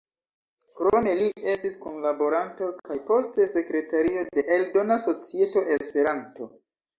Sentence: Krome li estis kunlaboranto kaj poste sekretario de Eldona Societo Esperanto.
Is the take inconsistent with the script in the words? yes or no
no